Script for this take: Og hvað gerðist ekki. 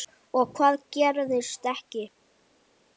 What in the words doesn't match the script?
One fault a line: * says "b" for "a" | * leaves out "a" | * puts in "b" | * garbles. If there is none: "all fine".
all fine